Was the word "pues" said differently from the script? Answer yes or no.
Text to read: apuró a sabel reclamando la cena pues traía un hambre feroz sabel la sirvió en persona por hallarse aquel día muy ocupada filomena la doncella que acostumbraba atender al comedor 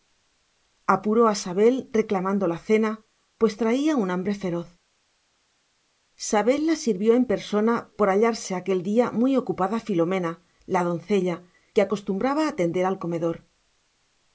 no